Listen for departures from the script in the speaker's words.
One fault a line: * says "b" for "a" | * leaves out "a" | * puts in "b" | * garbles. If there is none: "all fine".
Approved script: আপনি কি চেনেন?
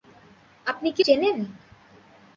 all fine